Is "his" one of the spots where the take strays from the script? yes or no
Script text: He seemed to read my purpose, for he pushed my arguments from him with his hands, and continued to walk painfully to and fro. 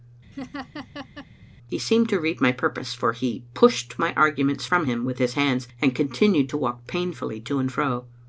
no